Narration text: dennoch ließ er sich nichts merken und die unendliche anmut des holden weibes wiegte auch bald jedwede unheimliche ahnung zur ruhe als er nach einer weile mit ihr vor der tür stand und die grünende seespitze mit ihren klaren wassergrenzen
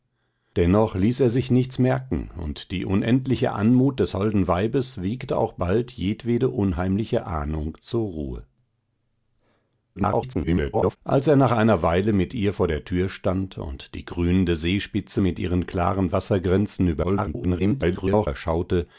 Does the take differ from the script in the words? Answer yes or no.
yes